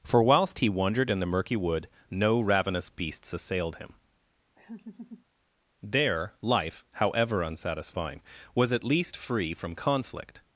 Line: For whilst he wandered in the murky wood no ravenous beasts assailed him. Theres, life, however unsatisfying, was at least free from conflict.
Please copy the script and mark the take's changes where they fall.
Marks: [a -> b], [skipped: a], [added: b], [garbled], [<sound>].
For whilst he wandered in the murky wood no ravenous beasts assailed him. [laugh] [Theres, -> There] life, however unsatisfying, was at least free from conflict.